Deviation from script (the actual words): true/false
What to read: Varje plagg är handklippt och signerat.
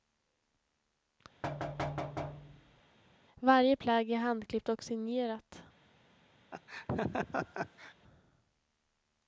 false